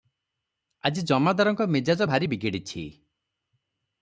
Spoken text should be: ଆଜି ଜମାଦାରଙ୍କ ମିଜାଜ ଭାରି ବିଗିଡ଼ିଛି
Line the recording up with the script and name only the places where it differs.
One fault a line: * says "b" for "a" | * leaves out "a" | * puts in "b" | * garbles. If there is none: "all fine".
all fine